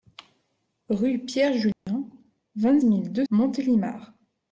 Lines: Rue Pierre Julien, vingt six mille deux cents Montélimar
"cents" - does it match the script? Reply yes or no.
no